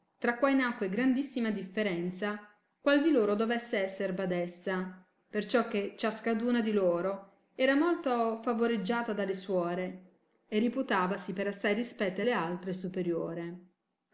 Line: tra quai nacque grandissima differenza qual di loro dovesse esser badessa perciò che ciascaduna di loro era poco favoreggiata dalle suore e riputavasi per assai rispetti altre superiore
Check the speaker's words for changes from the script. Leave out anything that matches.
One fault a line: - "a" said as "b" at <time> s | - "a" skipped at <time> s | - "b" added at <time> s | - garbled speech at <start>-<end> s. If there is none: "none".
- "poco" said as "molto" at 7.8 s
- "alle" added at 12.2 s